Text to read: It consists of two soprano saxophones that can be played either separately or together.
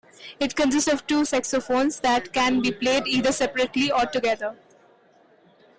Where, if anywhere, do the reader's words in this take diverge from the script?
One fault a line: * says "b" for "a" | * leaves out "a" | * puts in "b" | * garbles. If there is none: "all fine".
* leaves out "soprano"